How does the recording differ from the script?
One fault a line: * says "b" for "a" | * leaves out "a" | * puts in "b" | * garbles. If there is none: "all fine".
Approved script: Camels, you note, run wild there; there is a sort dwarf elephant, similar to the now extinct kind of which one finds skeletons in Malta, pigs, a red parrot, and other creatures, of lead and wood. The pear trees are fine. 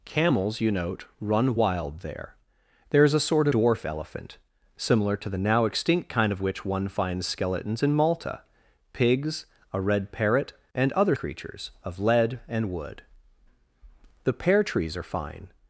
all fine